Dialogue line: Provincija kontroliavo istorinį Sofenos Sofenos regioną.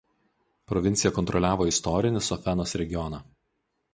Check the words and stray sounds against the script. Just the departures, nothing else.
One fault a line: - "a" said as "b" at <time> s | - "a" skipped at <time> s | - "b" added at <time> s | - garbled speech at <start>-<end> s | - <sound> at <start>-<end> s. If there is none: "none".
- "Sofenos" skipped at 2.8 s